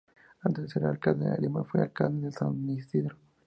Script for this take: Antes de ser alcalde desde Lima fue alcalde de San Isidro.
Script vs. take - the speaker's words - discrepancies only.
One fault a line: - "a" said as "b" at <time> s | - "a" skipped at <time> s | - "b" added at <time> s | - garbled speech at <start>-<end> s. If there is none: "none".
- "desde" said as "de" at 1.3 s